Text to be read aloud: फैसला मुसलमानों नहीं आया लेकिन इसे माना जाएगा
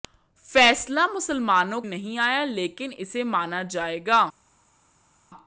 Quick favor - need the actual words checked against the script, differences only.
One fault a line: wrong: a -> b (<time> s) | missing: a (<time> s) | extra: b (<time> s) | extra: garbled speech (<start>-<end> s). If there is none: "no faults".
no faults